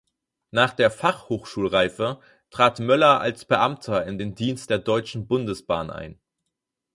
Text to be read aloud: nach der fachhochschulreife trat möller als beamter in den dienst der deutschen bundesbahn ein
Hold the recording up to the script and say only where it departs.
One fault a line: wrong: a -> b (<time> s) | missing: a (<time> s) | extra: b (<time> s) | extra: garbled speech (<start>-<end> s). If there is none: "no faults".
no faults